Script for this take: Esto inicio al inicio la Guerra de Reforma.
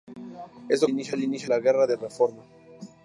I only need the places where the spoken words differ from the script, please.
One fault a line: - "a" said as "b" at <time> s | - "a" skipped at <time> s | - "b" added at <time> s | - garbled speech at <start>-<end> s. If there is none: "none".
none